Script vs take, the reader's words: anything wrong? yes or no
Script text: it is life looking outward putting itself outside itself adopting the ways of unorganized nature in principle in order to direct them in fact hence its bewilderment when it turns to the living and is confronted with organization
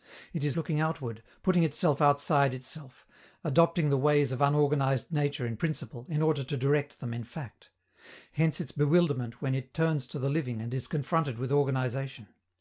yes